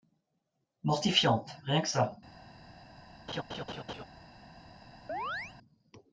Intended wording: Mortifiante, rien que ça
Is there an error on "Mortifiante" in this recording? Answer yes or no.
no